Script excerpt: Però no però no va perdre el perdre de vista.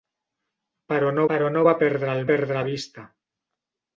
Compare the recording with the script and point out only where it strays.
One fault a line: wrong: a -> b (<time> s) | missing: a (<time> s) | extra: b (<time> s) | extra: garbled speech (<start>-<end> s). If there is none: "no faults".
no faults